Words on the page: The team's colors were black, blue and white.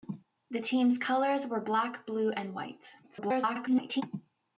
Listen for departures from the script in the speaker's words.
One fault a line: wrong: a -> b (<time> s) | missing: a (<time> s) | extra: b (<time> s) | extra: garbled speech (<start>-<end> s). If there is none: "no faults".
extra: garbled speech (3.0-4.0 s)